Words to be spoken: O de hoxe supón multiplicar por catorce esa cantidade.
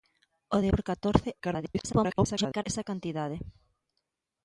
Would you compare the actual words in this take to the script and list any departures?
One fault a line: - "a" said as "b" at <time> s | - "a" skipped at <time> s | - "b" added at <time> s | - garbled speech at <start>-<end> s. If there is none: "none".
- "hoxe supón multiplicar" skipped at 0.7 s
- garbled speech at 1.4-2.6 s